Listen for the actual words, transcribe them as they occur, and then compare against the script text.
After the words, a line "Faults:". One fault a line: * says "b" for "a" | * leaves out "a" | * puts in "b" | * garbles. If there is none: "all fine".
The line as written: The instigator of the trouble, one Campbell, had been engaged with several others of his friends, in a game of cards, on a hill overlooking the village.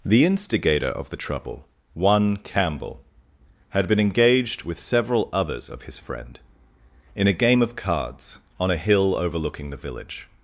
The instigator of the trouble, one Campbell, had been engaged with several others of his friend, in a game of cards, on a hill overlooking the village.
Faults:
* says "friend" for "friends"